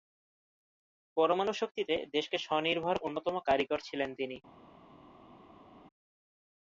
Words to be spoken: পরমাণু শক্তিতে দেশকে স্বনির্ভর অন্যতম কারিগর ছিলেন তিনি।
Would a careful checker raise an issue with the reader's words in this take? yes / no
no